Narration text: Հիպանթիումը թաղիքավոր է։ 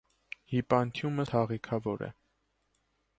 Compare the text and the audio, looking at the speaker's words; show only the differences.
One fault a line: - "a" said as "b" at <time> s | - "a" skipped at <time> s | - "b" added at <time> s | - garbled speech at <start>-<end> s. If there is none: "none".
none